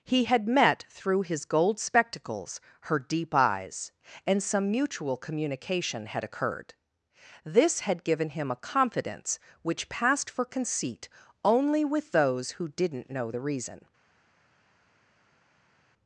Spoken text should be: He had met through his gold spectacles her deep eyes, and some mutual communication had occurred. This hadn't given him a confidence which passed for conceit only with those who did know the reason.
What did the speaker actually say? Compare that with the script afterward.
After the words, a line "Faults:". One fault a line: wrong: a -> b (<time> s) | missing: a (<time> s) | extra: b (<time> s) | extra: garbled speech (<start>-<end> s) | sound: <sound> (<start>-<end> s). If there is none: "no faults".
He had met through his gold spectacles her deep eyes, and some mutual communication had occurred. This had given him a confidence which passed for conceit only with those who didn't know the reason.
Faults:
wrong: hadn't -> had (7.8 s)
wrong: did -> didn't (12.7 s)